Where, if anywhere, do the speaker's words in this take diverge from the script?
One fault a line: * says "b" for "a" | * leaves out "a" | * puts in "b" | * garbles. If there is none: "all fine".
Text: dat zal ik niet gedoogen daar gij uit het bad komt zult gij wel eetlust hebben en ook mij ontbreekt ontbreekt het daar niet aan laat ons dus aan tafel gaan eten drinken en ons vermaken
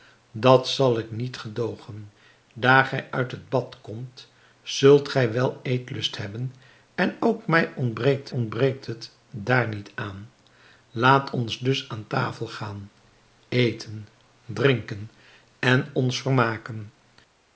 all fine